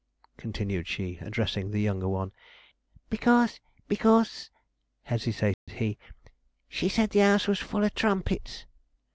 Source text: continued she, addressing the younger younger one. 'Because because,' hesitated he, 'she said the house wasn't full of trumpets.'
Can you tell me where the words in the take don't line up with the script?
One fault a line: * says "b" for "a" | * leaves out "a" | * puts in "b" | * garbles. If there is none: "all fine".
* leaves out "younger"
* says "was" for "wasn't"